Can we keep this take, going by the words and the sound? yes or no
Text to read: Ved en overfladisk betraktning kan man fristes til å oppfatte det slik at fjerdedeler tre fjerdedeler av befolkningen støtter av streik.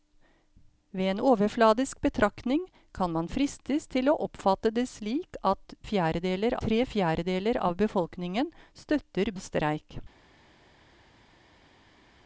yes